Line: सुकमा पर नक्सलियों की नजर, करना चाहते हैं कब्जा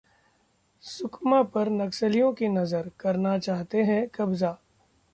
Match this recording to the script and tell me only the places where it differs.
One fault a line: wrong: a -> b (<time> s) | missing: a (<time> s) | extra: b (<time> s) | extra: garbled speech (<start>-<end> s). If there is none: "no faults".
no faults